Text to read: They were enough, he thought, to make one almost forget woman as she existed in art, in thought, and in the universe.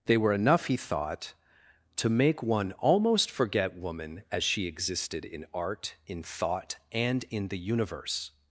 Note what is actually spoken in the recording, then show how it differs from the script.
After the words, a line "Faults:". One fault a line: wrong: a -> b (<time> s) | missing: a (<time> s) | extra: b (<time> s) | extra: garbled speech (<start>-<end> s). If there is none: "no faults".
They were enough, he thought, to make one almost forget woman as she existed in art, in thought, and in the universe.
Faults:
no faults